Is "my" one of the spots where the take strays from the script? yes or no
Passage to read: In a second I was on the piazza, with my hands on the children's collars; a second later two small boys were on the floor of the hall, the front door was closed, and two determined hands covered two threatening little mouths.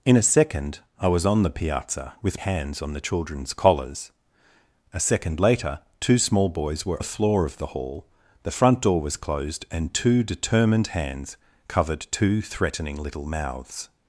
yes